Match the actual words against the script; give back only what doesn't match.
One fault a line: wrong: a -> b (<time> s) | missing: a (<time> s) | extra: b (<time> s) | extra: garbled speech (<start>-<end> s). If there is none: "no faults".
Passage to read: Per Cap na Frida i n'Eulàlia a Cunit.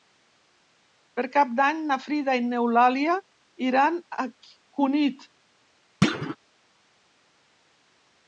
extra: d'Any (1.6 s)
extra: iran (3.7 s)